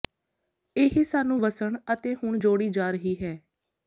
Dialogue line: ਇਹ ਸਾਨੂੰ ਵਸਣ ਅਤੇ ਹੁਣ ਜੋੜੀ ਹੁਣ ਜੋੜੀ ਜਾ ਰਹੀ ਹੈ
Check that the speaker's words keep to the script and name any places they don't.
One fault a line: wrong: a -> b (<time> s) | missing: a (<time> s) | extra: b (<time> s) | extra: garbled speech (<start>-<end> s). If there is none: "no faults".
missing: ਹੁਣ ਜੋੜੀ (2.7 s)